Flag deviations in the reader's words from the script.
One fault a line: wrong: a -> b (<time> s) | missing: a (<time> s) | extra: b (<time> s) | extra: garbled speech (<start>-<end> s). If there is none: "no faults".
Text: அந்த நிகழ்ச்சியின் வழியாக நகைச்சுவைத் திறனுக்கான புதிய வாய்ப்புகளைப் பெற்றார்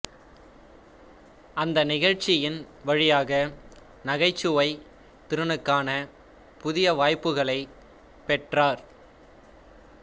no faults